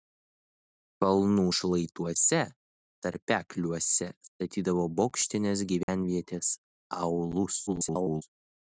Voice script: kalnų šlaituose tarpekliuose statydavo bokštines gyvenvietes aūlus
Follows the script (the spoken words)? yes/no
no